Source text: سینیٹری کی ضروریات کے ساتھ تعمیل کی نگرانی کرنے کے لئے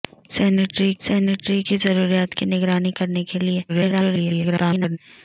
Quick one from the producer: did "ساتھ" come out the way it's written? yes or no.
no